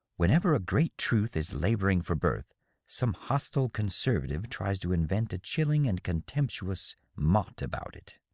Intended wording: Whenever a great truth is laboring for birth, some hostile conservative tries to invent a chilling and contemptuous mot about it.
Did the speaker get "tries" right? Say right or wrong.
right